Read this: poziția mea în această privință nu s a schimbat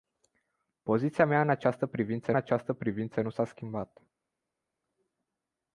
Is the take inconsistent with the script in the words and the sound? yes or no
yes